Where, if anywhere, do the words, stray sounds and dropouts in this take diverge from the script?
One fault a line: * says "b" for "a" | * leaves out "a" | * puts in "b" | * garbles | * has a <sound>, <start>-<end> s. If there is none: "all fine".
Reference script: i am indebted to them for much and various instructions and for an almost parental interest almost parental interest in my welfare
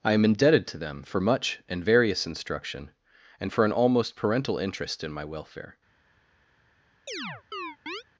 * says "instruction" for "instructions"
* leaves out "almost parental interest"
* has a chirp, 7.1-8.0 s